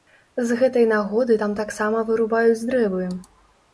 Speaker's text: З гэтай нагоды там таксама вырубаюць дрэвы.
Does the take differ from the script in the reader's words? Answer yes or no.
no